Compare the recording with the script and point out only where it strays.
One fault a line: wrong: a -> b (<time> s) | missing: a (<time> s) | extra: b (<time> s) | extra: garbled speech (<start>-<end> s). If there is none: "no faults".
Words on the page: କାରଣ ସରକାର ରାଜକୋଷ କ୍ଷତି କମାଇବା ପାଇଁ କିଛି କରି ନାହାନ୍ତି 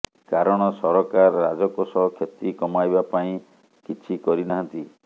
no faults